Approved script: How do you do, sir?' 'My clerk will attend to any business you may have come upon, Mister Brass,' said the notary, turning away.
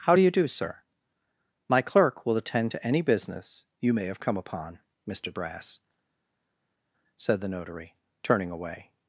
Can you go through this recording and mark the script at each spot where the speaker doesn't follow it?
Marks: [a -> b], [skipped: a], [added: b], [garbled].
How do you do, sir?' 'My clerk will attend to any business you may have come upon, Mister Brass,' said the notary, turning away.